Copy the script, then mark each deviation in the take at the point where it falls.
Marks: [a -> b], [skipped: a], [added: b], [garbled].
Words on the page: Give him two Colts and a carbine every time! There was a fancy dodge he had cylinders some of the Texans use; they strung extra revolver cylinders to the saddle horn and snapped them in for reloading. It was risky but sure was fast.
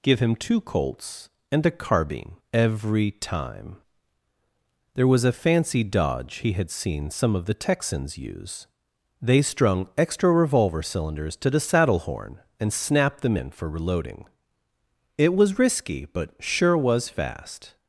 Give him two Colts and a carbine every time! There was a fancy dodge he had [cylinders -> seen] some of the Texans use; they strung extra revolver cylinders to the saddle horn and snapped them in for reloading. It was risky but sure was fast.